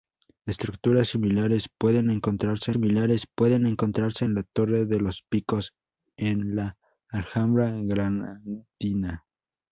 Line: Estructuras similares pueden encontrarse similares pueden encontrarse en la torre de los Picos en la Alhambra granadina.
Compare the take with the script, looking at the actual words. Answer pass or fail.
pass